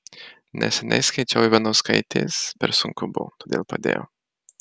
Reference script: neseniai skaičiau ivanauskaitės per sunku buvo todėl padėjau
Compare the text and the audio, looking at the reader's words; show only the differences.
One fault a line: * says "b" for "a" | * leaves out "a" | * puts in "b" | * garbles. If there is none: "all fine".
all fine